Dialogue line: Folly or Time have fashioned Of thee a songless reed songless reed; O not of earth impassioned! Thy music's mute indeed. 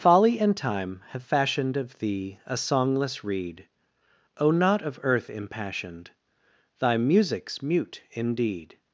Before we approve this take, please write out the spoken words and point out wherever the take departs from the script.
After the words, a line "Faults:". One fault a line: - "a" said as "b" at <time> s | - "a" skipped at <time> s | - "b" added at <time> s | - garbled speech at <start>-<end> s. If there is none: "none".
Folly and Time have fashioned Of thee a songless reed; O not of earth impassioned! Thy music's mute indeed.
Faults:
- "or" said as "and" at 0.4 s
- "songless reed" skipped at 3.7 s